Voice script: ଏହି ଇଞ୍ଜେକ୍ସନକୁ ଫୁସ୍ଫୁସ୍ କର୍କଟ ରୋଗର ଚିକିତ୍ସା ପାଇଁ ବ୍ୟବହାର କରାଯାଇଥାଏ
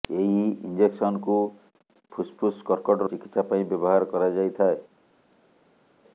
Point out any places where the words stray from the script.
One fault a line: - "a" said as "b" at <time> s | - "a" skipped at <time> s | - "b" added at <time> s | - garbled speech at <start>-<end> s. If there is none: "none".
- "ରୋଗର" skipped at 3.1 s